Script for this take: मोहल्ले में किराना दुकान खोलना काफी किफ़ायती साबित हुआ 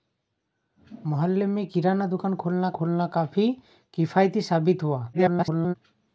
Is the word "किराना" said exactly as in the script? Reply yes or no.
yes